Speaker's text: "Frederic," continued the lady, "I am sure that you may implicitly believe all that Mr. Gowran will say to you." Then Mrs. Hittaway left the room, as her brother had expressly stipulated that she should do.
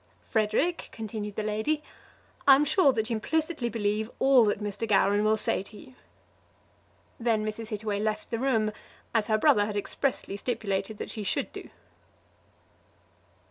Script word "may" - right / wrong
wrong